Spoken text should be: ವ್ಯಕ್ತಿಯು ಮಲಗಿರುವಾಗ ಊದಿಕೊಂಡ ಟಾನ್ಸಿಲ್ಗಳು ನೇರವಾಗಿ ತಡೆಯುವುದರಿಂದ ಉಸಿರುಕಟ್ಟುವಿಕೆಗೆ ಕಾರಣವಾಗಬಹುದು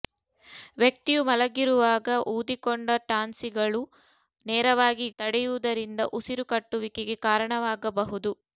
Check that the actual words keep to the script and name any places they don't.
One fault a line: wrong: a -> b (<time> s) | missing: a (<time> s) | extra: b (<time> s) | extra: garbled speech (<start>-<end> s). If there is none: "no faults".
no faults